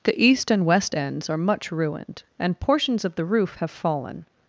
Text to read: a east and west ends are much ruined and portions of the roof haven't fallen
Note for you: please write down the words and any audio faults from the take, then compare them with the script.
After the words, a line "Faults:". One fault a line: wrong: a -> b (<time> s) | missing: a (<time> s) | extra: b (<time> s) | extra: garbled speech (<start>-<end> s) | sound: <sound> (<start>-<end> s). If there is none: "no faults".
the east and west ends are much ruined and portions of the roof have fallen
Faults:
wrong: a -> the (0.0 s)
wrong: haven't -> have (3.6 s)